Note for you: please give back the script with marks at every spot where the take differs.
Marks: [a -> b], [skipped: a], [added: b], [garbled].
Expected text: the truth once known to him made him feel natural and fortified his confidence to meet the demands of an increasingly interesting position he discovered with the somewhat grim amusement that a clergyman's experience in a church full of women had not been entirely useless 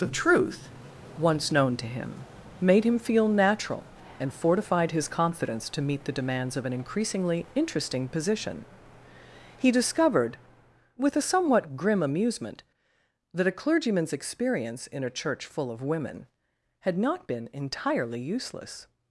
the truth once known to him made him feel natural and fortified his confidence to meet the demands of an increasingly interesting position he discovered with [the -> a] somewhat grim amusement that a clergyman's experience in a church full of women had not been entirely useless